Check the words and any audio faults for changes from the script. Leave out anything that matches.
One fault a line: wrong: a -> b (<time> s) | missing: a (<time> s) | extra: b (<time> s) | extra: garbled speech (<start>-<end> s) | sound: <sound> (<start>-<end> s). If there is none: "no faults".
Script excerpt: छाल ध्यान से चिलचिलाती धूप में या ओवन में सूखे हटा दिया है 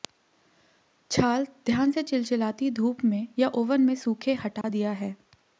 sound: dropout (4.6-4.6 s)